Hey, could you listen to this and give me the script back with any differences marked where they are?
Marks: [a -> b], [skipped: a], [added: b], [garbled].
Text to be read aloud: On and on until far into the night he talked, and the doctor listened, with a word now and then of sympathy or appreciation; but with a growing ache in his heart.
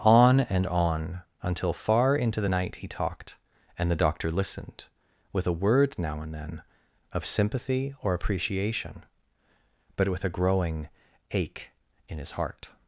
On and on until far into the night he talked, and the doctor listened, with a word now and then of sympathy or appreciation; but with a growing ache in his heart.